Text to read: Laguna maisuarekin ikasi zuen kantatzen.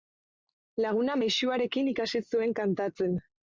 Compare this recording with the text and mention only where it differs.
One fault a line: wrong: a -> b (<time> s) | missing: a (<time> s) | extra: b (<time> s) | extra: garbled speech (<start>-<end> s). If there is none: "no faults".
no faults